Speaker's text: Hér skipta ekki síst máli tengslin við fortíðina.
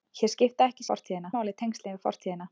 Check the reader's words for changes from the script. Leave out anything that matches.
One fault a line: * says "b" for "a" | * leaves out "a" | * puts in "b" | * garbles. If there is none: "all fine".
* says "fortíðina" for "síst"